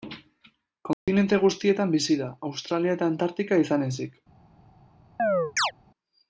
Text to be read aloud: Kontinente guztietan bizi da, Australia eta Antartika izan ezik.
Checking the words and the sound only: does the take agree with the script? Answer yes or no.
no